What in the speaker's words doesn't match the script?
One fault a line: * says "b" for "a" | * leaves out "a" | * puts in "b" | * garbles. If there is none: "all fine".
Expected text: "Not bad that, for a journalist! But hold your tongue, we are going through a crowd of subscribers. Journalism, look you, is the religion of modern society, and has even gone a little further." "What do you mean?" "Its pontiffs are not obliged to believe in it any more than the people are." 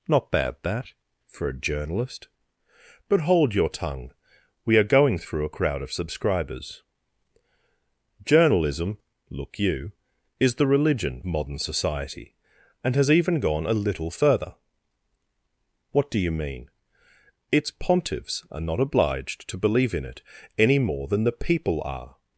* leaves out "of"